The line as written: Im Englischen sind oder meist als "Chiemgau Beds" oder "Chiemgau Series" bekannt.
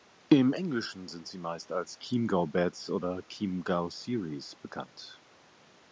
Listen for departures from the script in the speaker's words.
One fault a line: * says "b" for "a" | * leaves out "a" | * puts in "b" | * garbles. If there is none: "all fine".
* says "sie" for "oder"